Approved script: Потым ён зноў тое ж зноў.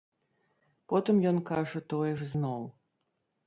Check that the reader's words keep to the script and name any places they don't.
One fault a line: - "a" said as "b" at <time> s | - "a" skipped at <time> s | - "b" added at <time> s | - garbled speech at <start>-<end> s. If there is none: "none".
- "зноў" said as "кажа" at 1.5 s